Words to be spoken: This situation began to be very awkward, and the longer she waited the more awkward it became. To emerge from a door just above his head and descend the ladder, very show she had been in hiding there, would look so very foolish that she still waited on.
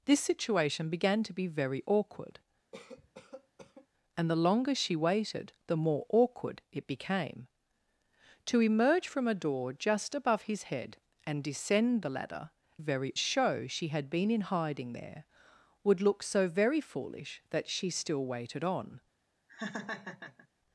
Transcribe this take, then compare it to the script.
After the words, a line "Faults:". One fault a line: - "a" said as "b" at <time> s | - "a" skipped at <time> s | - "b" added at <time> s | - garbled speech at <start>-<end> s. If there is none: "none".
This situation began to be very awkward, and the longer she waited the more awkward it became. To emerge from a door just above his head and descend the ladder, very show she had been in hiding there, would look so very foolish that she still waited on.
Faults:
none